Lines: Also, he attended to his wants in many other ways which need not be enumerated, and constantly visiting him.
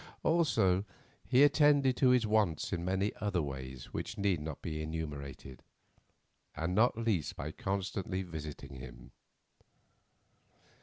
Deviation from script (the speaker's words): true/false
true